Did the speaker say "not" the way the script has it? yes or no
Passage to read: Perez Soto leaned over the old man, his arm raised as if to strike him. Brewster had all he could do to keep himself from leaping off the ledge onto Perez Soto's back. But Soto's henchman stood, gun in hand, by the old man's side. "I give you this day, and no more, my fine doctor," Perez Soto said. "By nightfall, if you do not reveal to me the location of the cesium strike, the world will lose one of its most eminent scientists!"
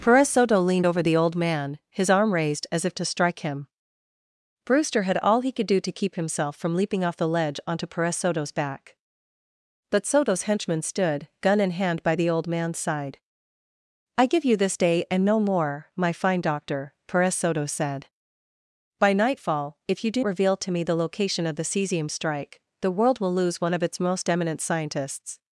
no